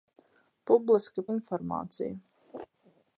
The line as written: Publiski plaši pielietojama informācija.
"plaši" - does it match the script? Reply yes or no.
no